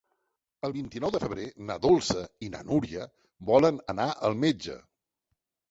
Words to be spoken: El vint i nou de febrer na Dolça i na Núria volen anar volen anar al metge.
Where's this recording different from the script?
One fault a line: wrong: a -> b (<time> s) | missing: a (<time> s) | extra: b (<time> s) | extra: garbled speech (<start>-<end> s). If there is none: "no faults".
missing: volen anar (4.1 s)